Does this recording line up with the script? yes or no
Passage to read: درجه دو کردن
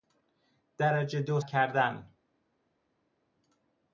yes